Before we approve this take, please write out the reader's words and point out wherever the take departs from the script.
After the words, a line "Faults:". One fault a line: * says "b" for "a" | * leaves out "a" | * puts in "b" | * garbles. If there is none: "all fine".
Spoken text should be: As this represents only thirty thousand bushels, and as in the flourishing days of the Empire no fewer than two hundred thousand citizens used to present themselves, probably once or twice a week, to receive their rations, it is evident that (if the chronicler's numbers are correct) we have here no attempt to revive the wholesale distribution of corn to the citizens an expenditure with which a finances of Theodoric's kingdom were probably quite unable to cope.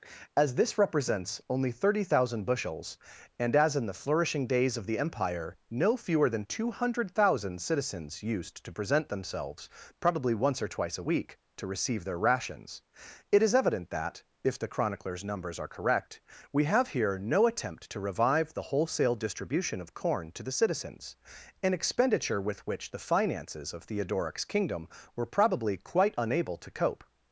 As this represents only thirty thousand bushels, and as in the flourishing days of the Empire no fewer than two hundred thousand citizens used to present themselves, probably once or twice a week, to receive their rations, it is evident that (if the chronicler's numbers are correct) we have here no attempt to revive the wholesale distribution of corn to the citizens an expenditure with which the finances of Theodoric's kingdom were probably quite unable to cope.
Faults:
* says "the" for "a"